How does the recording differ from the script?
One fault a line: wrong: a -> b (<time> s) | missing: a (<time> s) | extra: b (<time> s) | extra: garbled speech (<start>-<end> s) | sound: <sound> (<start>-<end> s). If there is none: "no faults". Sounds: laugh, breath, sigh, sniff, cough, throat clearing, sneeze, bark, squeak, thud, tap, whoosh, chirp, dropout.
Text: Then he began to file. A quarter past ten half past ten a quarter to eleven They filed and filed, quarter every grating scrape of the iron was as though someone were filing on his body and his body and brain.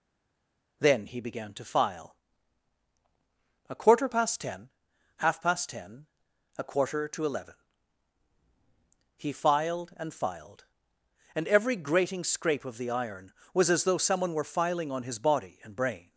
wrong: They -> He (9.2 s)
wrong: quarter -> and (11.3 s)
missing: his body and (15.8 s)